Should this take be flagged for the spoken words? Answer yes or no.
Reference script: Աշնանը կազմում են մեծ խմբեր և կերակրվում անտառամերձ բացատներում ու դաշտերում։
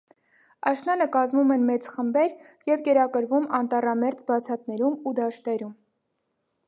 no